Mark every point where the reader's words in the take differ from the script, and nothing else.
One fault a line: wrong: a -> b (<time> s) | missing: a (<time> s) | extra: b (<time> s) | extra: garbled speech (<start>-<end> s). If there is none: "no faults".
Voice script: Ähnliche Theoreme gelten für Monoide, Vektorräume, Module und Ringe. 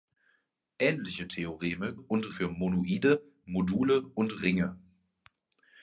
wrong: gelten -> und (2.0 s)
missing: Vektorräume (3.3 s)